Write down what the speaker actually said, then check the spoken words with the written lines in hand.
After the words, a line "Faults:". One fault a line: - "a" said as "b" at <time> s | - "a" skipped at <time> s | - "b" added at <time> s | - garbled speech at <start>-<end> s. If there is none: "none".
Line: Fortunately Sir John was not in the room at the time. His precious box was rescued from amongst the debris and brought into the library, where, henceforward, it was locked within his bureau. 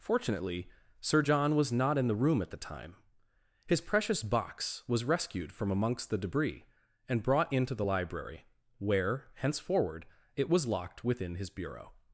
Fortunately Sir John was not in the room at the time. His precious box was rescued from amongst the debris and brought into the library, where, henceforward, it was locked within his bureau.
Faults:
none